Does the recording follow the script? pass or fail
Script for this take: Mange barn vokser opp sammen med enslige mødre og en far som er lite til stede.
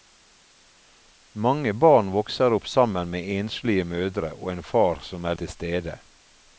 fail